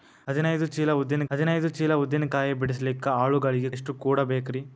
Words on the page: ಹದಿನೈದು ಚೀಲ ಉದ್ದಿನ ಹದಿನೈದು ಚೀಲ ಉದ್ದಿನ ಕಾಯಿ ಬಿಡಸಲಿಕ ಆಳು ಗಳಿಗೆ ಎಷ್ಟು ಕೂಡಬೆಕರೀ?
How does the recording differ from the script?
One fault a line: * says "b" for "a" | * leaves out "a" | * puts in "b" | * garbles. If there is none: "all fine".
all fine